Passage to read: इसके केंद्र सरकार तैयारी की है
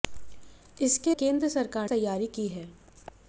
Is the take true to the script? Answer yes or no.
yes